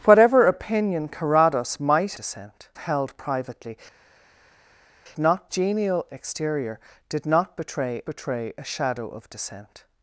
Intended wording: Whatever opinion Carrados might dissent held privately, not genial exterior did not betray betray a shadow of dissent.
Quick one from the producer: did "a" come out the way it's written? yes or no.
yes